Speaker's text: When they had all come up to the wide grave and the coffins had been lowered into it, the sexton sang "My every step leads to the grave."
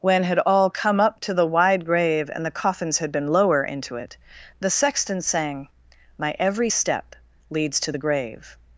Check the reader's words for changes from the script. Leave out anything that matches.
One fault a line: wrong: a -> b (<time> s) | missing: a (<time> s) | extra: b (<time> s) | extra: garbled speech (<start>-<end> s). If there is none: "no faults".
missing: they (0.2 s)
wrong: lowered -> lower (3.3 s)